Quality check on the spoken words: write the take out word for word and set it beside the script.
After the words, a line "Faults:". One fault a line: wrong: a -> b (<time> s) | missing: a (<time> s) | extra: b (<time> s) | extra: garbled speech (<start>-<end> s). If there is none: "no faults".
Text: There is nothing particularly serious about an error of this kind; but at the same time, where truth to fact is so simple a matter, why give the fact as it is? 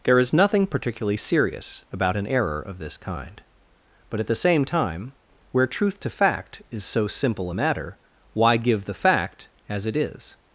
There is nothing particularly serious about an error of this kind; but at the same time, where truth to fact is so simple a matter, why give the fact as it is?
Faults:
no faults